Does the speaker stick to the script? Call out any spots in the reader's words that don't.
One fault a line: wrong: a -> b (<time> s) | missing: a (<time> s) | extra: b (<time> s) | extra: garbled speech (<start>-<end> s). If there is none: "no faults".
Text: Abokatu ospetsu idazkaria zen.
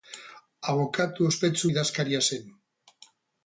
no faults